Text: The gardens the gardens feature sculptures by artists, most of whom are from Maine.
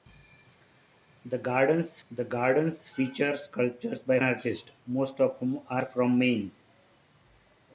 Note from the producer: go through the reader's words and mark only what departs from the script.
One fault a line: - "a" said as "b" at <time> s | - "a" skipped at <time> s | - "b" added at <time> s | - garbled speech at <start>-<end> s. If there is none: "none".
none